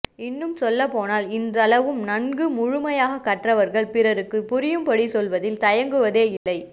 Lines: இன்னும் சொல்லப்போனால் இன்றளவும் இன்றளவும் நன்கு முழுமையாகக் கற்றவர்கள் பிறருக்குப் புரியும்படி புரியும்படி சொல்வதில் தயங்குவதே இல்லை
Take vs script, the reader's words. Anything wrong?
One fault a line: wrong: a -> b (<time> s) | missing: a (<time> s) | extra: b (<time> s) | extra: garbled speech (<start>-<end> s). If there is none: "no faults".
missing: இன்றளவும் (2.0 s)
missing: புரியும்படி (5.1 s)